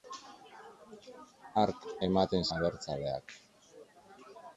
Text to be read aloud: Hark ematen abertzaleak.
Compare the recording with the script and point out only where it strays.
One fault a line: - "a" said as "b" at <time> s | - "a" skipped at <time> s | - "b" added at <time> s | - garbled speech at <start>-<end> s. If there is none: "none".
none